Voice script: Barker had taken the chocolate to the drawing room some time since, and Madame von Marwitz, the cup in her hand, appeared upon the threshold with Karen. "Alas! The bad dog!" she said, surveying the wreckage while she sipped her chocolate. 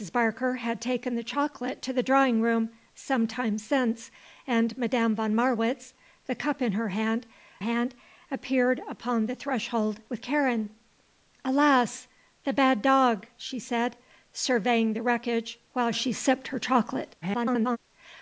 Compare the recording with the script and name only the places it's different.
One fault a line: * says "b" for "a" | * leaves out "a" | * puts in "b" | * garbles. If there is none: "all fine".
* puts in "hand"
* garbles